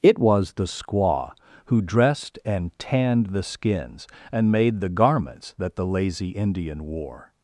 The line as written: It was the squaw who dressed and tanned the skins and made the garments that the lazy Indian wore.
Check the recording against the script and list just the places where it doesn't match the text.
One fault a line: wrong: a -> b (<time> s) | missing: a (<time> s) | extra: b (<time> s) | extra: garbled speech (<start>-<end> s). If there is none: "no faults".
no faults